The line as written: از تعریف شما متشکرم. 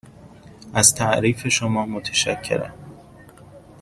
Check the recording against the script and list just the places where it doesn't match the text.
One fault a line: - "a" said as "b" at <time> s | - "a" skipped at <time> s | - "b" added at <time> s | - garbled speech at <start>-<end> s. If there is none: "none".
none